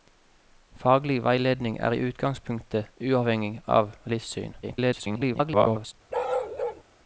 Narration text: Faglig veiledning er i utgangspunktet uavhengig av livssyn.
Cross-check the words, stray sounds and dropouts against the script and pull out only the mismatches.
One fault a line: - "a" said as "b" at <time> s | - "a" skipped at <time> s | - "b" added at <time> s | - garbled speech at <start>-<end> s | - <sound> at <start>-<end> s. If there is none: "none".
- garbled speech at 4.6-5.9 s
- bark at 6.1-6.8 s